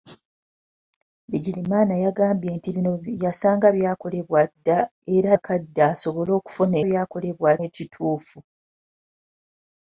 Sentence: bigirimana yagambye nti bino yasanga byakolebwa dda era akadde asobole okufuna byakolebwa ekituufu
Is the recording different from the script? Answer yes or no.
no